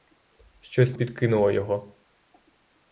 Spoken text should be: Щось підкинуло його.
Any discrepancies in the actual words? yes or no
no